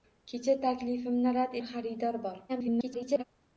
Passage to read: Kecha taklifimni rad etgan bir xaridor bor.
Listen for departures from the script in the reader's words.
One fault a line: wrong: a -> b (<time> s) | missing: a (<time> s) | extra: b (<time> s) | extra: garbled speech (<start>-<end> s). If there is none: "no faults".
missing: etgan (1.5 s)
extra: garbled speech (2.5-3.2 s)